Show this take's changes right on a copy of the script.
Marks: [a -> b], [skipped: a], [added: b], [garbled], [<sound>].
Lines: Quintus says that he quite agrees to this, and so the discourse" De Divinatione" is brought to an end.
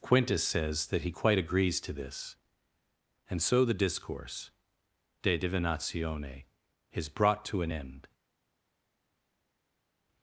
Quintus says that he quite agrees to this, and so the discourse" De Divinatione" is brought to an end.